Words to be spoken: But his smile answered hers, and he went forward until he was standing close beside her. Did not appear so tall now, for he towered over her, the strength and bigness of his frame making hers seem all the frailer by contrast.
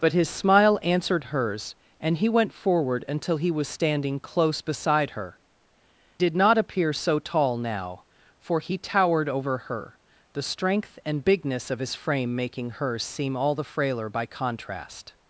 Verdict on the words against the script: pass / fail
pass